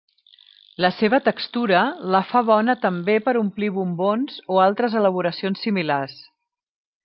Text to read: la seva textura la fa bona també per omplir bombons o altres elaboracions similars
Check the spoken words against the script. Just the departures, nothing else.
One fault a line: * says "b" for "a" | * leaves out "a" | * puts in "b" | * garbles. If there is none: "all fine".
all fine